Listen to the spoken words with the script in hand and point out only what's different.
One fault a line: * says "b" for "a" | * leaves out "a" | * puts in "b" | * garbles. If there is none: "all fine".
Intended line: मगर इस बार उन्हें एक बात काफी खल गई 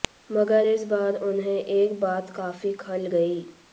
all fine